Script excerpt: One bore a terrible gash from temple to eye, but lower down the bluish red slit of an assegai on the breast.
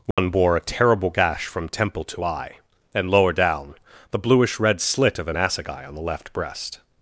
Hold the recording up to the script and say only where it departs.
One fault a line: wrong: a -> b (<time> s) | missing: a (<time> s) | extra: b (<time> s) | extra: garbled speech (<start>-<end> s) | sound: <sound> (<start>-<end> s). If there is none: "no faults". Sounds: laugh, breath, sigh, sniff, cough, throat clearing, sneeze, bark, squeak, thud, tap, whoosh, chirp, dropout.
sound: dropout (0.1-0.2 s)
wrong: but -> and (2.9 s)
extra: left (6.0 s)